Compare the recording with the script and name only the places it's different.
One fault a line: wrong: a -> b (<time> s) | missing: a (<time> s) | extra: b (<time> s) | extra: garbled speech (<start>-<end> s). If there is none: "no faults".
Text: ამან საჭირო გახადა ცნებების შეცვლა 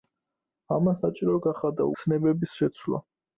no faults